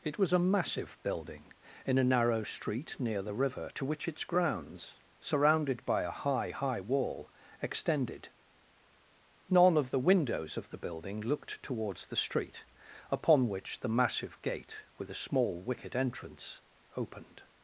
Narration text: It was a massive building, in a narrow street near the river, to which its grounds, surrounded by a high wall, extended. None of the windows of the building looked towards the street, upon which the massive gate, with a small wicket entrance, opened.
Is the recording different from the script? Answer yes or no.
yes